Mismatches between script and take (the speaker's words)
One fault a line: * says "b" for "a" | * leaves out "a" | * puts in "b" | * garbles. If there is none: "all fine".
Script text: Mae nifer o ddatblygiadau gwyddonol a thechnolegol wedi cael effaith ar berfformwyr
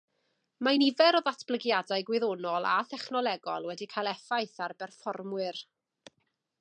all fine